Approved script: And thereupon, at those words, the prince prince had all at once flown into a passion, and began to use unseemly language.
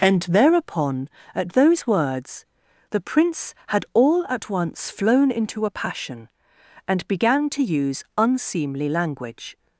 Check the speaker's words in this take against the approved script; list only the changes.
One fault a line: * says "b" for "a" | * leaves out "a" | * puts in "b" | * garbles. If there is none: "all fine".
* leaves out "prince"